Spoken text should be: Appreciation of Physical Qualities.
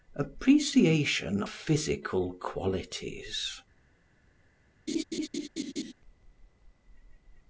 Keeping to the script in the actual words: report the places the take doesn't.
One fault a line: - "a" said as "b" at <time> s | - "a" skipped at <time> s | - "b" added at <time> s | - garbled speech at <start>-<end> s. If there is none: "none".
- "of" skipped at 1.4 s